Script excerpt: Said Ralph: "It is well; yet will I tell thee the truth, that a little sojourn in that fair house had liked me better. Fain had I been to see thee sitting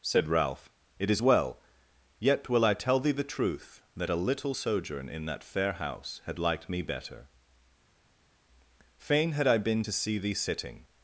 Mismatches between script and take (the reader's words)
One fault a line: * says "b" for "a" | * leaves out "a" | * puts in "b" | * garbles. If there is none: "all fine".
all fine